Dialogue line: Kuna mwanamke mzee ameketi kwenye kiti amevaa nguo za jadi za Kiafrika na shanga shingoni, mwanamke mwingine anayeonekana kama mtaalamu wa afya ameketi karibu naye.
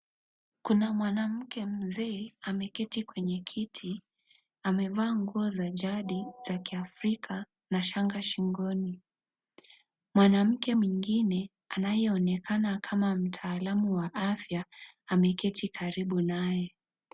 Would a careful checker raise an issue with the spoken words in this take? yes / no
no